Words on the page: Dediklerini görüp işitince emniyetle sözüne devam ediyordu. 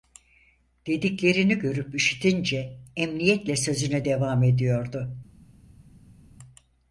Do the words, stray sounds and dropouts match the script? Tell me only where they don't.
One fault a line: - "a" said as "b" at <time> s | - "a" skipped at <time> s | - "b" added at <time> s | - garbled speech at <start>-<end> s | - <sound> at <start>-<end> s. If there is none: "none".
none